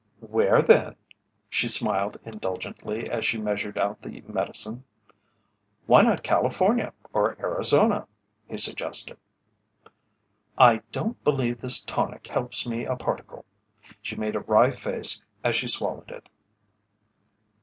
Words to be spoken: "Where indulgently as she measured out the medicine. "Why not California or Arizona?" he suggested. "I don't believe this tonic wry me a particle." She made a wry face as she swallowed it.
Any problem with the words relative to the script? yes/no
yes